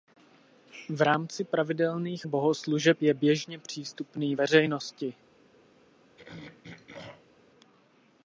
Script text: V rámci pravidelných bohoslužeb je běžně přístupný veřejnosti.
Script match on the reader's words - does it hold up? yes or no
yes